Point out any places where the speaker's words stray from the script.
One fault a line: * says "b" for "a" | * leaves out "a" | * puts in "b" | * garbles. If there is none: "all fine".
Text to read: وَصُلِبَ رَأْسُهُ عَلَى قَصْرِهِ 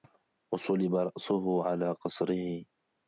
all fine